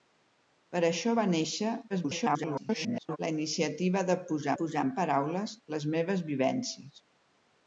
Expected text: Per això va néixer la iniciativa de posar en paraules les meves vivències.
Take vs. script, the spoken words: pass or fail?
fail